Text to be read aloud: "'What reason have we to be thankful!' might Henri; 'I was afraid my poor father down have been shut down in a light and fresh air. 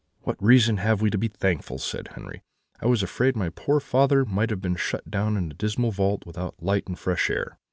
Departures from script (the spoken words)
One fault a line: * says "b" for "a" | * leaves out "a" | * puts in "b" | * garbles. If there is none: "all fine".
* says "said" for "might"
* says "might" for "down"
* puts in "dismal vault without"